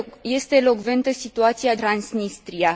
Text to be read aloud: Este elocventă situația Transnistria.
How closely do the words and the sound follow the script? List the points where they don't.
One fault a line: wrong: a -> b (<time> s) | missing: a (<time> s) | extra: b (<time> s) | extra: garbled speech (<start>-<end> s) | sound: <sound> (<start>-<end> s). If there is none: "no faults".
no faults